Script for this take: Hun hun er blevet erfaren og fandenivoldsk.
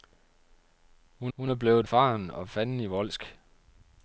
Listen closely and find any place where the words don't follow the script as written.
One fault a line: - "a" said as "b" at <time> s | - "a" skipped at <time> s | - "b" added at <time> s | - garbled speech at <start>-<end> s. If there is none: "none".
none